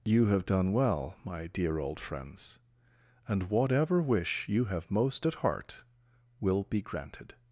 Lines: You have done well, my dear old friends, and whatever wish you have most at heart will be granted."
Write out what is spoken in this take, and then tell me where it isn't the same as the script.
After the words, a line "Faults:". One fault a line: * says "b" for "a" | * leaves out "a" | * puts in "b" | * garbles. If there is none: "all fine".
You have done well, my dear old friends, and whatever wish you have most at heart will be granted."
Faults:
all fine